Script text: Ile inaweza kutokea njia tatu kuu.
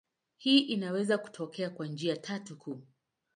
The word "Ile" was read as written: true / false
false